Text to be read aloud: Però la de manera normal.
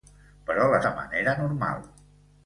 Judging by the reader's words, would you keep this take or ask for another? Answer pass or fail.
pass